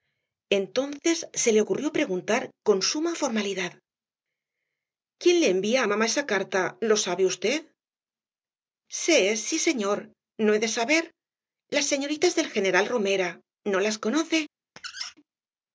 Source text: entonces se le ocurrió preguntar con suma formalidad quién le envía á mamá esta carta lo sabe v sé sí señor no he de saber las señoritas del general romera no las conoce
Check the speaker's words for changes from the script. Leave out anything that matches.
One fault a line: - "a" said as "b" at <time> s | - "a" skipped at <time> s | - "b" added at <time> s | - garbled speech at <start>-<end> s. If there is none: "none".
- "esta" said as "esa" at 6.1 s